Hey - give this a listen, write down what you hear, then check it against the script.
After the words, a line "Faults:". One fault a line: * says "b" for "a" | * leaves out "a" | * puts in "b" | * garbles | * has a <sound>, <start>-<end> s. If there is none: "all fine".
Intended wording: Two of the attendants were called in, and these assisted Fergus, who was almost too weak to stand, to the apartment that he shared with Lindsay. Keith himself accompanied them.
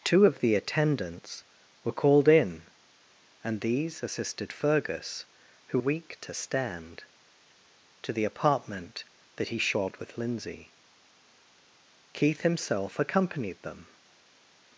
Two of the attendants were called in, and these assisted Fergus, who weak to stand, to the apartment that he shared with Lindsay. Keith himself accompanied them.
Faults:
* leaves out "was almost too"